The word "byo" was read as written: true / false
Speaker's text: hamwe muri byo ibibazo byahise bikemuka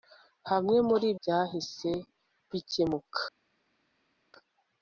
false